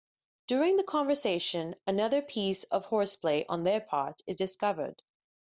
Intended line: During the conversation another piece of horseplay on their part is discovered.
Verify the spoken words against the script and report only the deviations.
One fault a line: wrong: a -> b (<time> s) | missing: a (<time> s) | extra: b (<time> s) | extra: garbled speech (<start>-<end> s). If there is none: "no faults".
no faults